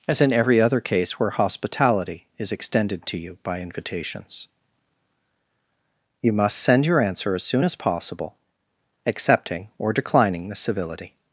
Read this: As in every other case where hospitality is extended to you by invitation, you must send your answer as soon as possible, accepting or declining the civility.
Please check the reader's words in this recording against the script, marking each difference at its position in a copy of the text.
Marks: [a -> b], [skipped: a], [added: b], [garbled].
As in every other case where hospitality is extended to you by [invitation, -> invitations] you must send your answer as soon as possible, accepting or declining the civility.